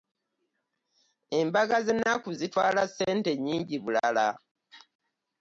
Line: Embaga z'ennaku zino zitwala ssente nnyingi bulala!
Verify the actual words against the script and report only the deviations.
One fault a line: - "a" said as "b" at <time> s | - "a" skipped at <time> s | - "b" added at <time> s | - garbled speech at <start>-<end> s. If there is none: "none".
- "zino" skipped at 2.3 s